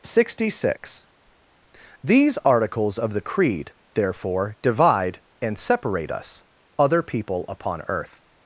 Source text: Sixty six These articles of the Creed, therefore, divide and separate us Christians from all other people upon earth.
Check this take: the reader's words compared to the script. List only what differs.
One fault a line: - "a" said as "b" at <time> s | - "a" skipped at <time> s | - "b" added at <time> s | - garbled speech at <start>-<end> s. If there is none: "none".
- "Christians from all" skipped at 6.4 s